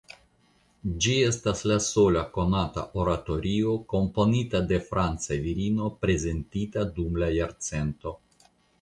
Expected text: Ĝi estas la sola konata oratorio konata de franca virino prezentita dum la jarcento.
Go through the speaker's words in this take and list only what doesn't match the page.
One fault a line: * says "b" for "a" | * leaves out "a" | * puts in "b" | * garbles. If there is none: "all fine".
* says "komponita" for "konata"